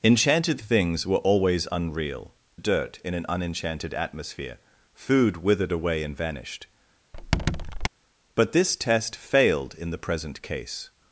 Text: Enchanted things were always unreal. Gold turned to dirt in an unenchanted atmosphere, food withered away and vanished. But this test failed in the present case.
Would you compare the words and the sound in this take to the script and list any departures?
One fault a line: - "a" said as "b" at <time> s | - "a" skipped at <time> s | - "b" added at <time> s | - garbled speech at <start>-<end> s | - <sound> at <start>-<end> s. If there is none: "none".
- "Gold turned to" skipped at 2.3 s
- squeak at 7.1-7.9 s